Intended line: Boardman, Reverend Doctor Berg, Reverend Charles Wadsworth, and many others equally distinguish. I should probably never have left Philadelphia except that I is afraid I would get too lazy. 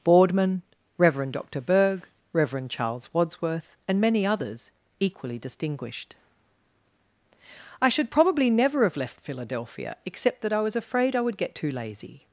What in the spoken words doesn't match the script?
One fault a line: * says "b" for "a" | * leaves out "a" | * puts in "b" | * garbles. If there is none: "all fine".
* says "distinguished" for "distinguish"
* says "was" for "is"